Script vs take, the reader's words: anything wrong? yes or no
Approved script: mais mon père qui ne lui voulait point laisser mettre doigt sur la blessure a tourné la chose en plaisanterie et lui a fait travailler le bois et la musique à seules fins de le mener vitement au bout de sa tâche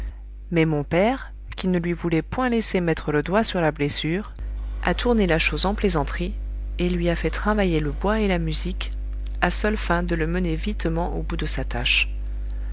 yes